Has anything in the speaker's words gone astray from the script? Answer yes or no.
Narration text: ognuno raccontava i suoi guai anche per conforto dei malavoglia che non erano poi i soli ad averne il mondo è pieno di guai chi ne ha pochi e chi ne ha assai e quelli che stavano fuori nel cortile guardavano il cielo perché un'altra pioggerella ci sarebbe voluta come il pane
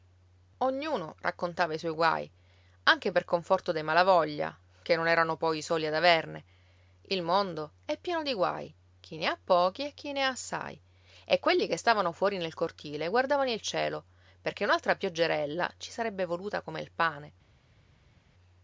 no